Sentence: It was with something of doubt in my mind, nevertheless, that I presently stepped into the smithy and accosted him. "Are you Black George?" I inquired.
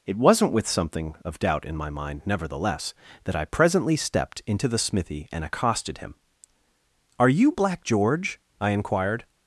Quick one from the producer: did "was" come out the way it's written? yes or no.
no